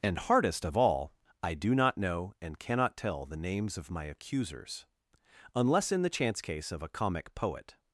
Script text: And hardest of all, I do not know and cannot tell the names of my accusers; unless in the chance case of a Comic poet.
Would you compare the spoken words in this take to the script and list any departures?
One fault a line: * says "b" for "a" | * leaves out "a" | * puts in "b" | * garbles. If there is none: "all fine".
all fine